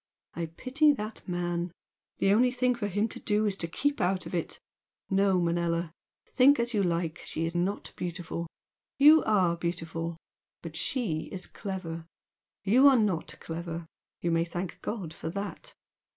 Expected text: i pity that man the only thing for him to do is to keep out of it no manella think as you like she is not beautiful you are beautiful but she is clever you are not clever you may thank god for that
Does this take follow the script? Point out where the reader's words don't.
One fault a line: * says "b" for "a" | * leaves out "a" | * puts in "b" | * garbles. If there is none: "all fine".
all fine